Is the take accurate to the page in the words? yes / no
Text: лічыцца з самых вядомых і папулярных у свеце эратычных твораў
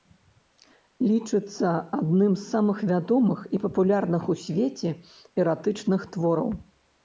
no